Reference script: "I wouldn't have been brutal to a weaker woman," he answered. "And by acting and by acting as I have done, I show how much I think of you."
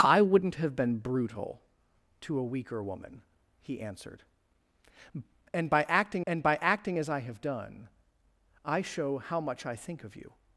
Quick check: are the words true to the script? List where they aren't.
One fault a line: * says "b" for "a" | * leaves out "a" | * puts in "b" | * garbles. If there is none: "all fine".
all fine